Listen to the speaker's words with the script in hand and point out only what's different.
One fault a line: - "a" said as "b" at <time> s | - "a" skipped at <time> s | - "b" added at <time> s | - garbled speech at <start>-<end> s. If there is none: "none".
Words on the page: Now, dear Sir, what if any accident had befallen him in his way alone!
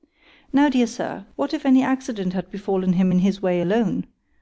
none